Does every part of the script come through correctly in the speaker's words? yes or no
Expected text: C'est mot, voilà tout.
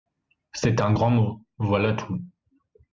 no